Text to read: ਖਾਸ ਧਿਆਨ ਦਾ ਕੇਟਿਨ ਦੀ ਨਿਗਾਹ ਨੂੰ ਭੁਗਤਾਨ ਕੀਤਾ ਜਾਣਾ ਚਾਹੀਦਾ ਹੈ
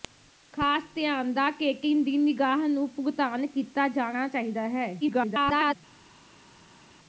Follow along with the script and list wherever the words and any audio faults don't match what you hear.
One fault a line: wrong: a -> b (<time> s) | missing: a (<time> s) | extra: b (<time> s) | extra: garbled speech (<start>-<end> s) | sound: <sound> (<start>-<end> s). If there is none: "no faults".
extra: garbled speech (5.0-5.8 s)